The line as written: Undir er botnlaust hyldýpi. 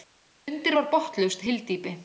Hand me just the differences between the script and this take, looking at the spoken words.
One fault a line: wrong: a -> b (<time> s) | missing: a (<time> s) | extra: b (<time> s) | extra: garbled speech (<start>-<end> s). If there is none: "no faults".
wrong: er -> var (0.8 s)